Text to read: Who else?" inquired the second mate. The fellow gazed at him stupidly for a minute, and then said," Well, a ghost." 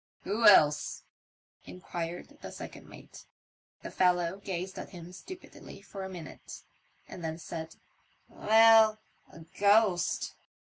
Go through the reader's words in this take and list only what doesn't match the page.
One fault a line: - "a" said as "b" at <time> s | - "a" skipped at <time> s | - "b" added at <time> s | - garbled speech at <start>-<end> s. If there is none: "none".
none